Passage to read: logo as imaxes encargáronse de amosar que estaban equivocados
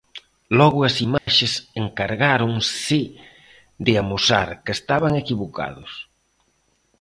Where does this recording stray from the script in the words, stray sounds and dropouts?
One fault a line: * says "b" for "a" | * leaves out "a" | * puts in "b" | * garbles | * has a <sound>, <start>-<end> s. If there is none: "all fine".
* has a dropout, 1.2-1.3 s